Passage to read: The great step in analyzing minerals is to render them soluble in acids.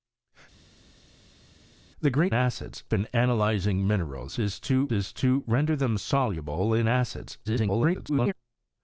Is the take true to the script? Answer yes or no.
no